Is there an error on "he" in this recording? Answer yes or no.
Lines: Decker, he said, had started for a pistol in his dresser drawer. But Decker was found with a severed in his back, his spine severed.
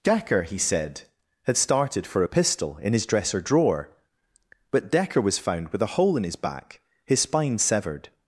no